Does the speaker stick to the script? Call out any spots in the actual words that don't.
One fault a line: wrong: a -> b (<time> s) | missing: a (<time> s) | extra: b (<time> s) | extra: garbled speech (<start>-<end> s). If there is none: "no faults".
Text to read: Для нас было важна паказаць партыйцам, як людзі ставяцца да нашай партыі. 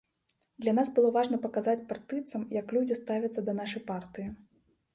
no faults